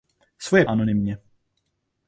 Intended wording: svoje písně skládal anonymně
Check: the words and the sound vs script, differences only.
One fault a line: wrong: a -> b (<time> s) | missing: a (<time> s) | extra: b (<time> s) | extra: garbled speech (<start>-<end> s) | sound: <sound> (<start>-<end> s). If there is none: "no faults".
missing: písně skládal (0.7 s)